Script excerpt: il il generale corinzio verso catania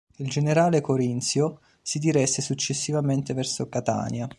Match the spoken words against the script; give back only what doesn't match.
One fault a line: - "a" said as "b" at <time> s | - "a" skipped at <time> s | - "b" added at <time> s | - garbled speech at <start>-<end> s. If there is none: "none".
- "il" skipped at 0.3 s
- "si diresse successivamente" added at 1.8 s